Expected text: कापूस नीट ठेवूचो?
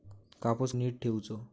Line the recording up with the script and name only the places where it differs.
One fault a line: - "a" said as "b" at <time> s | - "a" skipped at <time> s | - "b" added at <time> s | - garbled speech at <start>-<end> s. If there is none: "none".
none